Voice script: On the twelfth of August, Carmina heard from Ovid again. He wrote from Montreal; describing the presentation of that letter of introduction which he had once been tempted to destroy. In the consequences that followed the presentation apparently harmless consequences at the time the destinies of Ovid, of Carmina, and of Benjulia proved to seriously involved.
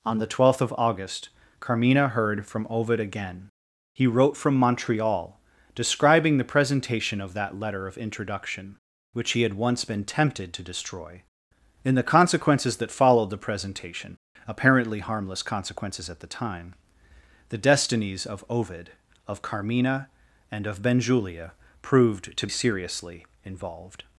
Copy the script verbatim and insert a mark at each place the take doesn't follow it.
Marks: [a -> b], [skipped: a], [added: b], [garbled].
On the twelfth of August, Carmina heard from Ovid again. He wrote from Montreal; describing the presentation of that letter of introduction which he had once been tempted to destroy. In the consequences that followed the presentation apparently harmless consequences at the time the destinies of Ovid, of Carmina, and of Benjulia proved to seriously involved.